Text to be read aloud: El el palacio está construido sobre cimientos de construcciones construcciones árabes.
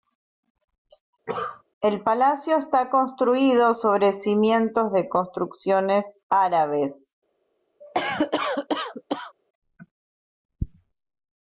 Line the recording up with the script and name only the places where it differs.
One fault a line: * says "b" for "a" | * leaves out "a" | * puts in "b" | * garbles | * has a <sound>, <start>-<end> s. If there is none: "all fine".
* has a cough, 1.3-1.6 s
* leaves out "el"
* leaves out "construcciones"
* has a cough, 7.8-9.3 s